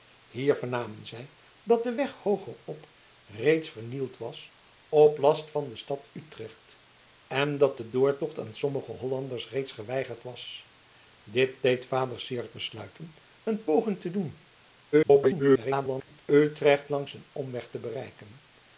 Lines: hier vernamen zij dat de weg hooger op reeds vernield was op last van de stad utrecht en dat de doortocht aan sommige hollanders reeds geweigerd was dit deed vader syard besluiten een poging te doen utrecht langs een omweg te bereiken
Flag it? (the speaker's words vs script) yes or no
yes